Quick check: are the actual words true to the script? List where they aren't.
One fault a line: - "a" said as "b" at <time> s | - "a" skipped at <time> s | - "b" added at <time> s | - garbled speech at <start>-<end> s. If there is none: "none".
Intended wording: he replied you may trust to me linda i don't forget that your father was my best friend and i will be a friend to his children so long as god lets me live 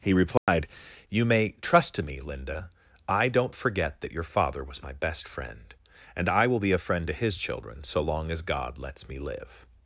none